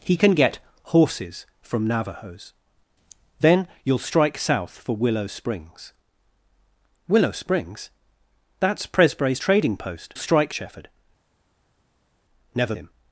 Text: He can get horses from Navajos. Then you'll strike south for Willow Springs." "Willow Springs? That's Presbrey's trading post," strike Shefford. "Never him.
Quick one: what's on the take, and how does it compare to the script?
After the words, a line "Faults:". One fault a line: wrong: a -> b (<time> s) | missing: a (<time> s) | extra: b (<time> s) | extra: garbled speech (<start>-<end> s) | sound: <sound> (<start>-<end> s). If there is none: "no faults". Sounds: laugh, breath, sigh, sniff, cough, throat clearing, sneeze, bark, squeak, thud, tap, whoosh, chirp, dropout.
He can get horses from Navajos. Then you'll strike south for Willow Springs." "Willow Springs? That's Presbrey's trading post," strike Shefford. "Never him.
Faults:
no faults